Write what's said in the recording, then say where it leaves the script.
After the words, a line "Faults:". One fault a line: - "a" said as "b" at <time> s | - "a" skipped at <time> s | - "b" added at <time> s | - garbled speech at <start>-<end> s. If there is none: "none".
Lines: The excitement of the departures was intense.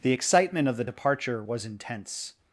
The excitement of the departure was intense.
Faults:
- "departures" said as "departure" at 0.8 s